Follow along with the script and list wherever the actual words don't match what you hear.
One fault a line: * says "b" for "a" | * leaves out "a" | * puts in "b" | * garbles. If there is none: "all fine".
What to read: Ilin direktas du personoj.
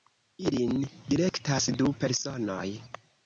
all fine